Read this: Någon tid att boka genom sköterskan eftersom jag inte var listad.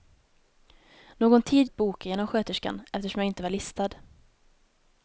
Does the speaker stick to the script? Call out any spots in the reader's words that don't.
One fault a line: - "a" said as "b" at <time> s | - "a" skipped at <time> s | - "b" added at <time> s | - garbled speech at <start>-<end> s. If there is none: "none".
none